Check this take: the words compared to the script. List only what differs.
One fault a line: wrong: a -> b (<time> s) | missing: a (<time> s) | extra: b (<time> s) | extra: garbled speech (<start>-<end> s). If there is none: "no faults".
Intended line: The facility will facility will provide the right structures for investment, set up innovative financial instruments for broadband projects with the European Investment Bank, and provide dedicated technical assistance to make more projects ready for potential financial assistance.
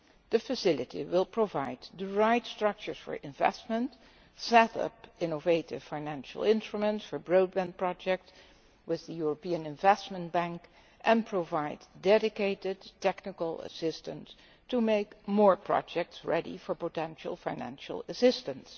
missing: facility will (1.2 s)